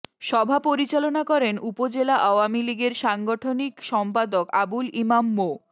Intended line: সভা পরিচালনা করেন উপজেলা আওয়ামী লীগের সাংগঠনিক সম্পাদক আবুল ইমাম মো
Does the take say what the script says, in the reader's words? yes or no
yes